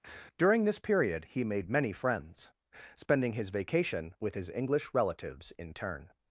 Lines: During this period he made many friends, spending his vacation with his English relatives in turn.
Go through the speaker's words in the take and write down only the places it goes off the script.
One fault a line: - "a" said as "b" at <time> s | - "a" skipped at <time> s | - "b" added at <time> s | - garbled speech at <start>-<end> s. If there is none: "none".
none